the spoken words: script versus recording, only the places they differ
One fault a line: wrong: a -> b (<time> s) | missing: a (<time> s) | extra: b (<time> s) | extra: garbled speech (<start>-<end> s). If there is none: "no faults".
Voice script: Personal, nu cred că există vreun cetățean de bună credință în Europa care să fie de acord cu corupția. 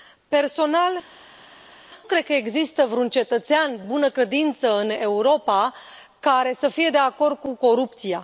missing: nu (0.9 s)
missing: de (3.8 s)